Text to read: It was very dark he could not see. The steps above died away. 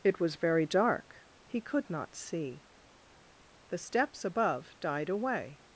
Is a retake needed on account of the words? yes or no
no